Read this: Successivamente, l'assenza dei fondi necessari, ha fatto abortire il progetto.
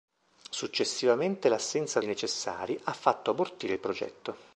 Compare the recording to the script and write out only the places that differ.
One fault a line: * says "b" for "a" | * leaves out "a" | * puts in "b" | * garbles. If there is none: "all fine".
* leaves out "dei fondi"